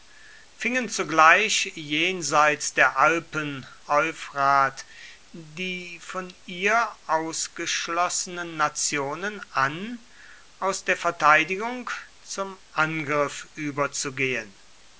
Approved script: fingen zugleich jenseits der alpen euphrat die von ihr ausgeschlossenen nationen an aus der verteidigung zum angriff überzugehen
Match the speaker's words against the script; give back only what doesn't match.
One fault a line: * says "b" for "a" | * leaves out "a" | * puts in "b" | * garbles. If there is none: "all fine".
all fine